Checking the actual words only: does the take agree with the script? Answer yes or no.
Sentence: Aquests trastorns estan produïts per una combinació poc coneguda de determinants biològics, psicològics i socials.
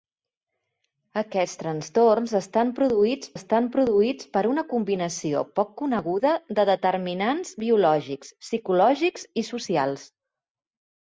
no